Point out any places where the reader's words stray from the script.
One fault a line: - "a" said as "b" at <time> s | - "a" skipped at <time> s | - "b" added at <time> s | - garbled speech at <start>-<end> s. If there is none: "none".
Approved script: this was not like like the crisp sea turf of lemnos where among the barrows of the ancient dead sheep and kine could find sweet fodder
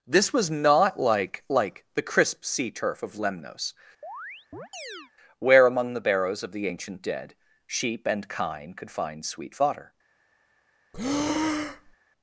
none